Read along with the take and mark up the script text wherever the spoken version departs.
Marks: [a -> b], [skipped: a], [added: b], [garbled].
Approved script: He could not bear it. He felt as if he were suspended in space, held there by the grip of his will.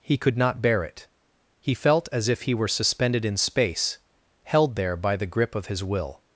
He could not bear it. He felt as if he were suspended in space, held there by the grip of his will.